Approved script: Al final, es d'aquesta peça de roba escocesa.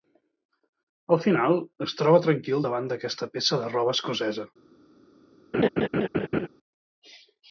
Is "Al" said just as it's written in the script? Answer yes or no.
yes